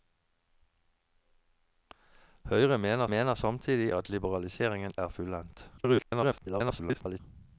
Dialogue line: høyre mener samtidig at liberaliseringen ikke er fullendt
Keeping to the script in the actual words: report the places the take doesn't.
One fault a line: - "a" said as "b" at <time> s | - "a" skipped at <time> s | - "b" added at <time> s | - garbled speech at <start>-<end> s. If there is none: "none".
- "mener" added at 3.1 s
- "ikke" skipped at 4.9 s
- garbled speech at 5.8-7.2 s